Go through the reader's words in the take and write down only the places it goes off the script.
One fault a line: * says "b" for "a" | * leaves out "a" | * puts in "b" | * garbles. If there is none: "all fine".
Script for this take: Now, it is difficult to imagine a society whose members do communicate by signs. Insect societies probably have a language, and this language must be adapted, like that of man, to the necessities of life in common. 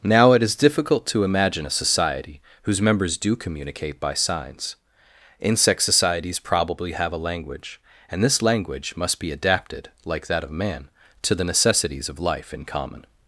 all fine